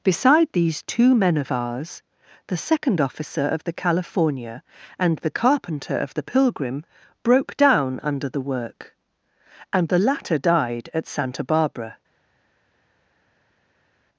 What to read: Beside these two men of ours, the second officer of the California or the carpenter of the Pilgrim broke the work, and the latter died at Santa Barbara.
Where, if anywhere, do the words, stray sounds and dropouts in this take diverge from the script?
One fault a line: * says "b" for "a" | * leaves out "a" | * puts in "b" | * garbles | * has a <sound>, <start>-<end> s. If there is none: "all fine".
* says "and" for "or"
* puts in "down under"